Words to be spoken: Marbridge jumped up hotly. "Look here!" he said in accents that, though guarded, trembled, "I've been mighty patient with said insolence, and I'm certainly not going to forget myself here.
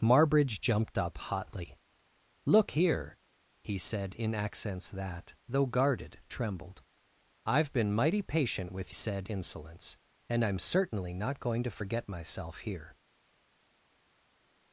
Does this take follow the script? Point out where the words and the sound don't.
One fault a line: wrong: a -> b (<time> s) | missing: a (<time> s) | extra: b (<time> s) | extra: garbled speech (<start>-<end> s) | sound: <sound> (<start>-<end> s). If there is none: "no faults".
no faults